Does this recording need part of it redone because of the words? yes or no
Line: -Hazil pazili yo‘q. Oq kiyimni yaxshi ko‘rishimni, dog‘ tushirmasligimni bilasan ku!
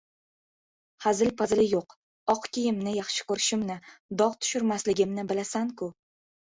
no